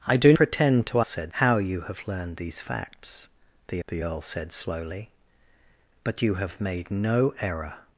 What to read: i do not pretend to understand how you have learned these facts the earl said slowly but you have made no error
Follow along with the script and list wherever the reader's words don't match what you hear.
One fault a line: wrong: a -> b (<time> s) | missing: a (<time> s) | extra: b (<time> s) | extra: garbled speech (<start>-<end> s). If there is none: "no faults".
missing: not (0.3 s)
wrong: understand -> said (1.0 s)
extra: the (3.9 s)